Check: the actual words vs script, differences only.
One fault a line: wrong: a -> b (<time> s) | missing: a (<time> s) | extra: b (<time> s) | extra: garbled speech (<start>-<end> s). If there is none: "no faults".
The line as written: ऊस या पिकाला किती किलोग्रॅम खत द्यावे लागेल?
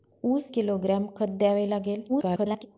missing: या पिकाला किती (0.5 s)
extra: garbled speech (2.1-2.7 s)